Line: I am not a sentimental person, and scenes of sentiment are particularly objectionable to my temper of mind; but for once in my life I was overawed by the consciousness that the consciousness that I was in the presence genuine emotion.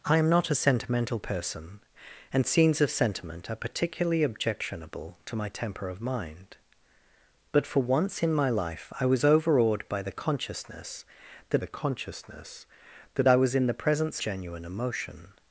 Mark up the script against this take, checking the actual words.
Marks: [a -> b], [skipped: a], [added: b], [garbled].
I am not a sentimental person, and scenes of sentiment are particularly objectionable to my temper of mind; but for once in my life I was overawed by the consciousness that the consciousness that I was in the presence genuine emotion.